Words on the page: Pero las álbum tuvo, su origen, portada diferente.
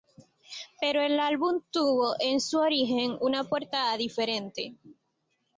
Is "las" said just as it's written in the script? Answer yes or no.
no